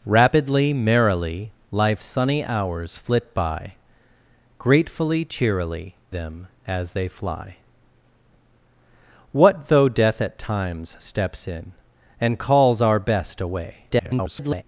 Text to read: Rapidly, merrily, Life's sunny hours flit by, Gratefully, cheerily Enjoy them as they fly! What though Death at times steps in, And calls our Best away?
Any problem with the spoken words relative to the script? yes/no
yes